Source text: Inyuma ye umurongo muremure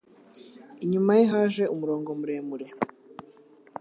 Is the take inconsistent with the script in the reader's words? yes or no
yes